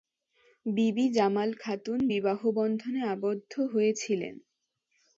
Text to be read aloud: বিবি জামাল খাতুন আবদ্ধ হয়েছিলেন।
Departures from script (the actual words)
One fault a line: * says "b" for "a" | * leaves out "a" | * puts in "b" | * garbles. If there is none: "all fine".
* puts in "বিবাহবন্ধনে"